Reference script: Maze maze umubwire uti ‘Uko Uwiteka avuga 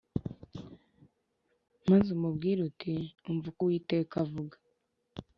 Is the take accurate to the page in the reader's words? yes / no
no